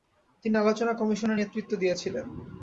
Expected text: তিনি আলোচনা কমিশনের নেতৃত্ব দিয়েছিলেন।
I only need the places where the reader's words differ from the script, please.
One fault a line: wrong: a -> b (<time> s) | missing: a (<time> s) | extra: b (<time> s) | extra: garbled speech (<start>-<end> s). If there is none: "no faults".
no faults